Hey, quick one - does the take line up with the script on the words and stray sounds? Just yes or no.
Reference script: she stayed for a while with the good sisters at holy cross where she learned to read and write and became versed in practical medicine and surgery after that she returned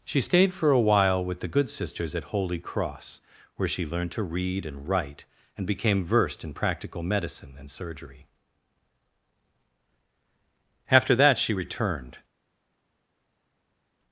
yes